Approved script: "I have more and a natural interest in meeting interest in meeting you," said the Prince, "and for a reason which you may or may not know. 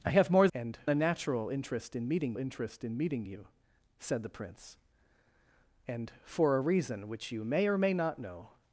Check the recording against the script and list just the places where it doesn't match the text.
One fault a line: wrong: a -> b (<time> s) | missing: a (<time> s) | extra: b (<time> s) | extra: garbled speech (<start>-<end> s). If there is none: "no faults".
no faults